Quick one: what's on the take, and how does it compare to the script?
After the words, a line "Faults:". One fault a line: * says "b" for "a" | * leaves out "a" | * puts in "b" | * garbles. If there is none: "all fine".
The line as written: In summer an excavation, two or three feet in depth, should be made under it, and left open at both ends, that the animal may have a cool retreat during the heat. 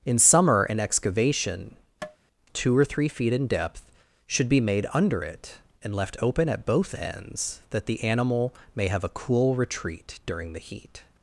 In summer an excavation, two or three feet in depth, should be made under it, and left open at both ends, that the animal may have a cool retreat during the heat.
Faults:
all fine